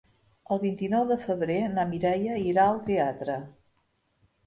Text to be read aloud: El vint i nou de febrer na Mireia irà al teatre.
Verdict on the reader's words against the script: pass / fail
pass